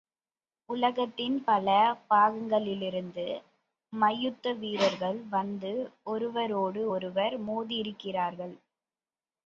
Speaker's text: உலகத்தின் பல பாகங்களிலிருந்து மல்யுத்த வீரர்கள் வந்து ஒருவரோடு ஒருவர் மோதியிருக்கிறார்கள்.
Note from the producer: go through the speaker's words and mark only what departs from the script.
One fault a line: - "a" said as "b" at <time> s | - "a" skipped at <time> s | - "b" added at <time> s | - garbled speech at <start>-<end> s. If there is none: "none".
none